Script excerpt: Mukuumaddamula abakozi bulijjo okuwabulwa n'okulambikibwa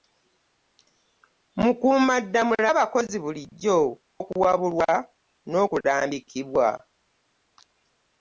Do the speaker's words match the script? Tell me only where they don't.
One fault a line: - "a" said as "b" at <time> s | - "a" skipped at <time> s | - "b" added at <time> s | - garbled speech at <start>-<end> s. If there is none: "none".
none